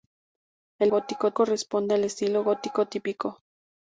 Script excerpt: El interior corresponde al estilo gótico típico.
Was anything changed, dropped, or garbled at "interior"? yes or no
yes